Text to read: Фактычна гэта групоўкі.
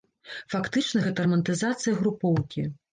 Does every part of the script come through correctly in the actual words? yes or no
no